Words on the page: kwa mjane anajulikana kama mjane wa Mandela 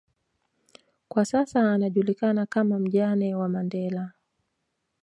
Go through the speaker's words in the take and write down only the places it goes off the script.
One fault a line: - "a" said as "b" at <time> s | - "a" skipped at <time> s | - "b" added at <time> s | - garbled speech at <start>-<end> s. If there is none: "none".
- "mjane" said as "sasa" at 1.2 s